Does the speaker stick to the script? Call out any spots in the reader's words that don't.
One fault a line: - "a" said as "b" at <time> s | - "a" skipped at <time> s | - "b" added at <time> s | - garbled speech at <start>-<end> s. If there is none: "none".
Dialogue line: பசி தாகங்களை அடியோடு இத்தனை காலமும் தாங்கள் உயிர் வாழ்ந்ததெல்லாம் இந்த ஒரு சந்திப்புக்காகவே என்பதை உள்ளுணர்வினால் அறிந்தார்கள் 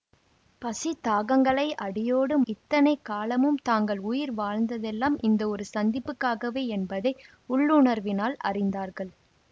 none